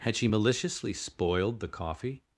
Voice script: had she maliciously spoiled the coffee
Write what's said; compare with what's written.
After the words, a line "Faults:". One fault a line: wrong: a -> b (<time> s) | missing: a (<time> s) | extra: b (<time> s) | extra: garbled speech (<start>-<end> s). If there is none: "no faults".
had she maliciously spoiled the coffee
Faults:
no faults